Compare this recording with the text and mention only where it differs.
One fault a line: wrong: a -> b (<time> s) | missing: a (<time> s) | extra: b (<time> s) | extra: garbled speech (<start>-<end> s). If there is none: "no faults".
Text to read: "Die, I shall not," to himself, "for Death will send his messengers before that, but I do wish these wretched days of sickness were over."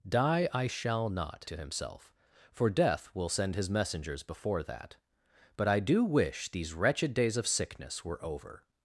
no faults